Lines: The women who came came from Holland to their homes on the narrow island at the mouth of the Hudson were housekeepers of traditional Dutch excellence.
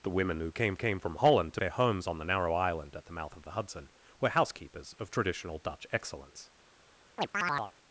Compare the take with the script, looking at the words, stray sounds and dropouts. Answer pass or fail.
fail